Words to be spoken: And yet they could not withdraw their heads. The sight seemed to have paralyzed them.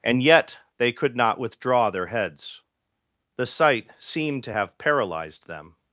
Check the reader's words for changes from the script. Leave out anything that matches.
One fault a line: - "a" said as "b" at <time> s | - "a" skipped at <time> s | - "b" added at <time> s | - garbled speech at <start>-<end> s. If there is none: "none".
none